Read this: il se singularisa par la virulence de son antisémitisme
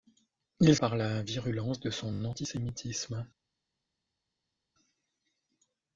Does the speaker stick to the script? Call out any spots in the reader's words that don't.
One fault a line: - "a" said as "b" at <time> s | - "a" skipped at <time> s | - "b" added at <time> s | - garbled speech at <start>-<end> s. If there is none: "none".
- "se singularisa" skipped at 0.8 s